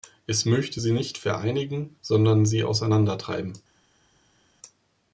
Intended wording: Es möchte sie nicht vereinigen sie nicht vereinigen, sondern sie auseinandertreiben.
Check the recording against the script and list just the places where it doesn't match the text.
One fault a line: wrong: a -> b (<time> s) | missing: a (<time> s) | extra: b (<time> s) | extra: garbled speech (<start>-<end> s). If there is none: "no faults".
missing: sie nicht vereinigen (2.0 s)